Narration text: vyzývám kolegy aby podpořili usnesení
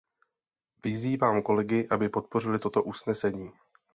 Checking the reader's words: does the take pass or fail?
fail